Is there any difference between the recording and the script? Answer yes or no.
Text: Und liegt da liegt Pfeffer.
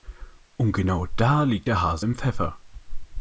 yes